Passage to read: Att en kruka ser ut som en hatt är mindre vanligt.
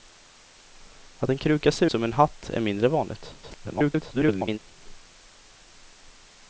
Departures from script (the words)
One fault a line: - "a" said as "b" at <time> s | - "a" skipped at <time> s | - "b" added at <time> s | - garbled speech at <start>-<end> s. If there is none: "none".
- "ut" skipped at 1.9 s
- garbled speech at 3.4-4.6 s